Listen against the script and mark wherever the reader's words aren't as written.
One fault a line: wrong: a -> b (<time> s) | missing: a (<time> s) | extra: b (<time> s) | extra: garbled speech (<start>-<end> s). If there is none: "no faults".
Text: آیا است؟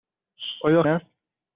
no faults